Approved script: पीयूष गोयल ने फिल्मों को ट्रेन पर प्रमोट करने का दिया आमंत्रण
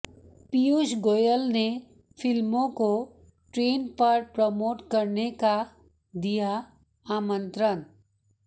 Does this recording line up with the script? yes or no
yes